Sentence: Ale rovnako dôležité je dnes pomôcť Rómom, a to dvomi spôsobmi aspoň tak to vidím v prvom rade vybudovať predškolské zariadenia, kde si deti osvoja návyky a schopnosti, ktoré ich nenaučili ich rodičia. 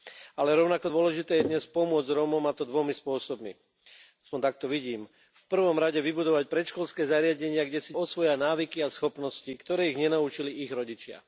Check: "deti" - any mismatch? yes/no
yes